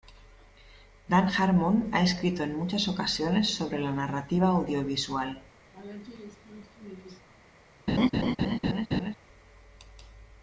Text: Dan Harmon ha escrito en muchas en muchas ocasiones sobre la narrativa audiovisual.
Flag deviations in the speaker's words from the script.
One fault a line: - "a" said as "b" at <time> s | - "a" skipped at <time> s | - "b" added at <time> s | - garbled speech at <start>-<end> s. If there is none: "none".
- "en muchas" skipped at 2.9 s